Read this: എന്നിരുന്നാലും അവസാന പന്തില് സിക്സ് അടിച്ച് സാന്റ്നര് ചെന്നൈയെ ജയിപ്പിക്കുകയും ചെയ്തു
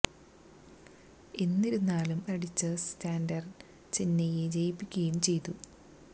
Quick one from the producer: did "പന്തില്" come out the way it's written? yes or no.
no